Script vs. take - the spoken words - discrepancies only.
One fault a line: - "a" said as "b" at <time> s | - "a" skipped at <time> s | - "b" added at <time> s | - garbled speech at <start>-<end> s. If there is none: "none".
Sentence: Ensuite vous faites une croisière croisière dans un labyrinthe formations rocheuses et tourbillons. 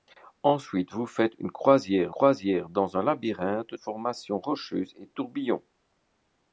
none